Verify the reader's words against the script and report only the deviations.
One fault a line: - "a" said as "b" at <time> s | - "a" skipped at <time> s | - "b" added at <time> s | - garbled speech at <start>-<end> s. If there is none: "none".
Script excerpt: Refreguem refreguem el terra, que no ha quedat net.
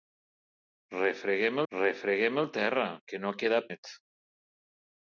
none